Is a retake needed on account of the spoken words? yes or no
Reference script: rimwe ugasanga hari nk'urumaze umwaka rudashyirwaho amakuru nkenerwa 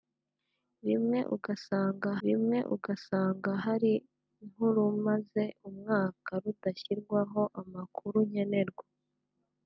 yes